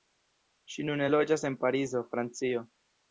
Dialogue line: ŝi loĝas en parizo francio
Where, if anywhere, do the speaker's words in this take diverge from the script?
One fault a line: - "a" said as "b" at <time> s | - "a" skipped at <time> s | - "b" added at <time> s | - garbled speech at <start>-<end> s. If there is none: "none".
- "nune" added at 0.9 s